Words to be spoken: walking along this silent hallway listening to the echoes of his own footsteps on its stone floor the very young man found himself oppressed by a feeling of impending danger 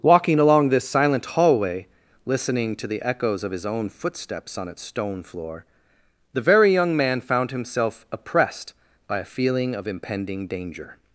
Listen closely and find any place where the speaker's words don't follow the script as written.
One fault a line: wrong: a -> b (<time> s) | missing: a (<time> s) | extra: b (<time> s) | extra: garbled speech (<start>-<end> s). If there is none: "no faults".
no faults